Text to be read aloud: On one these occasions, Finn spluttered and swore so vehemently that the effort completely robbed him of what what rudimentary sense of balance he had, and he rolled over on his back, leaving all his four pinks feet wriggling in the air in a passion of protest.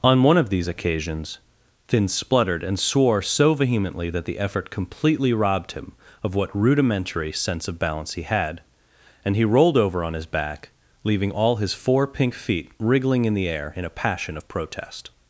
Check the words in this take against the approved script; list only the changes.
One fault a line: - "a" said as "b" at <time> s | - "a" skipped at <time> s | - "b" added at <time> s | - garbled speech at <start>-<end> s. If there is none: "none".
- "of" added at 0.4 s
- "what" skipped at 6.6 s
- "pinks" said as "pink" at 12.1 s